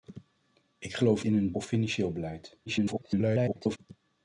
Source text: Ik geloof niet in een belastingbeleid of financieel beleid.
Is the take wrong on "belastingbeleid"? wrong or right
wrong